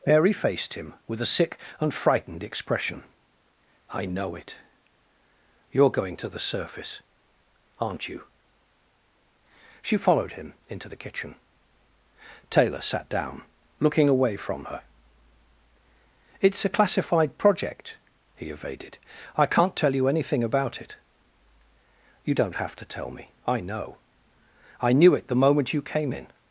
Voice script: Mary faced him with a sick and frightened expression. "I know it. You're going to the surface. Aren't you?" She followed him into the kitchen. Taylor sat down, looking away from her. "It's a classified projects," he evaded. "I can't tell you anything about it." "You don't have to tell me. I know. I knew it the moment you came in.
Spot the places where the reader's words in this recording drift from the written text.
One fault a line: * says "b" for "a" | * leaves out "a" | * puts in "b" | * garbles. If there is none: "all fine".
* says "project" for "projects"